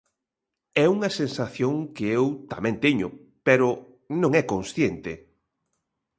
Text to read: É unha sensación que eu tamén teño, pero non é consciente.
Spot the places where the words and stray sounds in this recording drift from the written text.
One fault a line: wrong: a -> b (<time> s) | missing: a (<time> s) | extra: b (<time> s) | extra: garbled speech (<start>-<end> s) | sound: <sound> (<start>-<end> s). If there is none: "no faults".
no faults